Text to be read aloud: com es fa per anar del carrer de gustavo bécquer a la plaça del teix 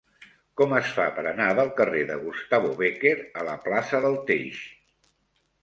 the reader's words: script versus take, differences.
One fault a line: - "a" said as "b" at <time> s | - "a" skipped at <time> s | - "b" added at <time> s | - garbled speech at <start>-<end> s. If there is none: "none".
none